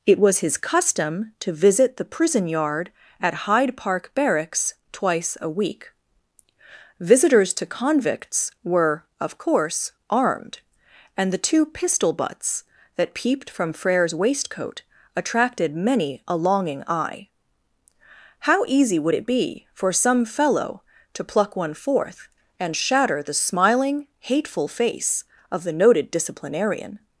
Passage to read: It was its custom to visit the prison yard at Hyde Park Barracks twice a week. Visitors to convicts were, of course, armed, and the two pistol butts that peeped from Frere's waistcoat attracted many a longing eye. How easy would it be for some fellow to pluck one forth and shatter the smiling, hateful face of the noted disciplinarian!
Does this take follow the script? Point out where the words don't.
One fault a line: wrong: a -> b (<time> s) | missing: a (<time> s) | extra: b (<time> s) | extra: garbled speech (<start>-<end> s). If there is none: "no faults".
wrong: its -> his (0.4 s)